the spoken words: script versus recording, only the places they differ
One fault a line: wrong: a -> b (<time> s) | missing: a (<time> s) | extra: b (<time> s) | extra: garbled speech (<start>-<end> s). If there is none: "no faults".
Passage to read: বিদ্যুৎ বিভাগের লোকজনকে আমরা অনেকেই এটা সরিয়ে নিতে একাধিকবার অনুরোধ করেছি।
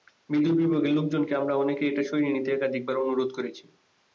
no faults